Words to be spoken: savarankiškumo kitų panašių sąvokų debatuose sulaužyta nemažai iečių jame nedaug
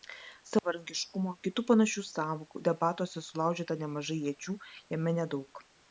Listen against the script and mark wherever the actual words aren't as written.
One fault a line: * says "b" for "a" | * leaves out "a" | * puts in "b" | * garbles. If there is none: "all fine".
all fine